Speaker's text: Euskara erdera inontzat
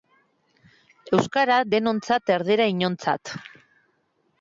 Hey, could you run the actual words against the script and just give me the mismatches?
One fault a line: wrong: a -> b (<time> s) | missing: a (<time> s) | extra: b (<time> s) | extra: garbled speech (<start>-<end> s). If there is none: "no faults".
extra: denontzat (1.7 s)